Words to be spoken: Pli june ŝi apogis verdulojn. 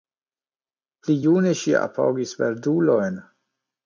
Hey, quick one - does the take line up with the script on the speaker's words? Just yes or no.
yes